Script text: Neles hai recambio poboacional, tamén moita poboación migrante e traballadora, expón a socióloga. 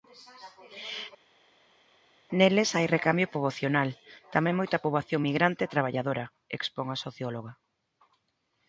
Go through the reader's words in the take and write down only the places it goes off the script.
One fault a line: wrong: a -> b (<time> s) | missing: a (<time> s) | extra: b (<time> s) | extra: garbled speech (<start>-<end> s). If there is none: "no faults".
no faults